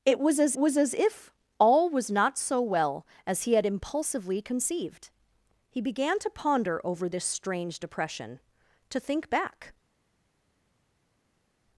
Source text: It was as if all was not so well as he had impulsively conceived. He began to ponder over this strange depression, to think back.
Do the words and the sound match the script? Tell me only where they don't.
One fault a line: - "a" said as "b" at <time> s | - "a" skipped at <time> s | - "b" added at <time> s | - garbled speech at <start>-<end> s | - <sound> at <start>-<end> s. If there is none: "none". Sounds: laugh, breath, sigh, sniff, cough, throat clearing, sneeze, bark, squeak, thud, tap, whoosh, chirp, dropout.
- "was as" added at 0.6 s